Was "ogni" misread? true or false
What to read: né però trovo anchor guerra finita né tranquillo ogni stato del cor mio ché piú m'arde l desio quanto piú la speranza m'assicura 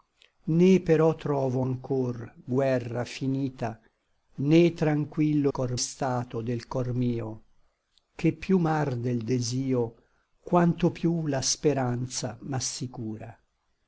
true